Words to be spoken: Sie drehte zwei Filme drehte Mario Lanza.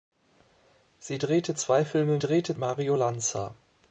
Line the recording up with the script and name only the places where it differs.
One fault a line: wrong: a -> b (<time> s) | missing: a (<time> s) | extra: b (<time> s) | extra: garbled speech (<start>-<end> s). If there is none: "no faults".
no faults